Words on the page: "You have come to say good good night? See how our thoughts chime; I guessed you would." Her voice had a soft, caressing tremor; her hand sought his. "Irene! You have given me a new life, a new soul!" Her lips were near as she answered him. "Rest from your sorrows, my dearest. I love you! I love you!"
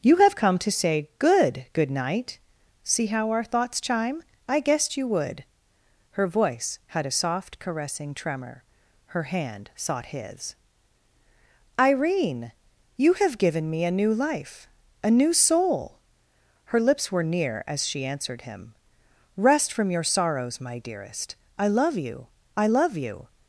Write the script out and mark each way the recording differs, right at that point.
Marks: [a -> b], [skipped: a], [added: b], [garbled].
"You have come to say good good night? See how our thoughts chime; I guessed you would." Her voice had a soft, caressing tremor; her hand sought his. "Irene! You have given me a new life, a new soul!" Her lips were near as she answered him. "Rest from your sorrows, my dearest. I love you! I love you!"